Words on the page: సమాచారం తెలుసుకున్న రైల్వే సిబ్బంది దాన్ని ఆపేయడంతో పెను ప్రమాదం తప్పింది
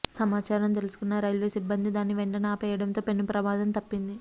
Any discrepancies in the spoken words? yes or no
yes